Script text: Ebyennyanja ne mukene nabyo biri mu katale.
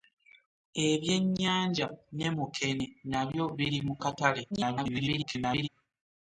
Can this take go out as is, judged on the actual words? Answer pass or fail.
fail